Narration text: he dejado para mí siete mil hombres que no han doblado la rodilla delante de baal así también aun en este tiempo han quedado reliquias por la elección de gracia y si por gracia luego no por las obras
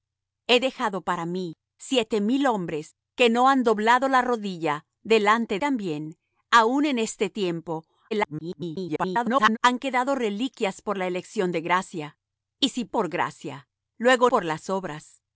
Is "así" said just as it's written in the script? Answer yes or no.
no